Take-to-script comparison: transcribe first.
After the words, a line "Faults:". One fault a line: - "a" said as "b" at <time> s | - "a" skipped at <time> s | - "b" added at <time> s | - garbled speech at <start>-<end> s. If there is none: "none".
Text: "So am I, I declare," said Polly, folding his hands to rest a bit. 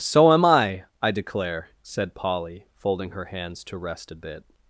"So am I, I declare," said Polly, folding her hands to rest a bit.
Faults:
- "his" said as "her" at 3.1 s